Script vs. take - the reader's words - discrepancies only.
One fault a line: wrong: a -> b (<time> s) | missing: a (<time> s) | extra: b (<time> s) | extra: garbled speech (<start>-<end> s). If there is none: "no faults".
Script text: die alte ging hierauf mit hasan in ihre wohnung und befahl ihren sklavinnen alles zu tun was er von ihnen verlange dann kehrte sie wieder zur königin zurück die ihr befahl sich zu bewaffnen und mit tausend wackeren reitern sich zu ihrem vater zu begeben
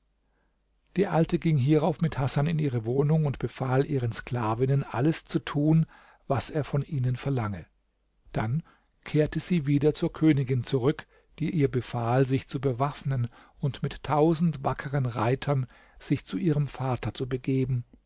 no faults